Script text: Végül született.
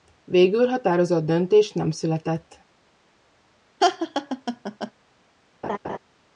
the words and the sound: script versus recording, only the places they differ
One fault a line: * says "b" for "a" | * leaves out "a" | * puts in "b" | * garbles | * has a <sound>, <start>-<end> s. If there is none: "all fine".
* puts in "határozott döntés nem"
* has a laugh, 3.8-4.9 s
* has a laugh, 5.6-6.0 s